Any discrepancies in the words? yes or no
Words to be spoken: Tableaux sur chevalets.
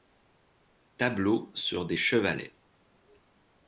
yes